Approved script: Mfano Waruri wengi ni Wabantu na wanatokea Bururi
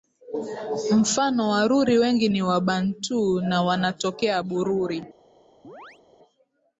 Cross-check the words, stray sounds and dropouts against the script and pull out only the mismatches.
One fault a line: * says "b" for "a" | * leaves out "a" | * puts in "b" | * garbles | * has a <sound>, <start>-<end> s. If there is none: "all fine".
* has a chirp, 5.6-6.0 s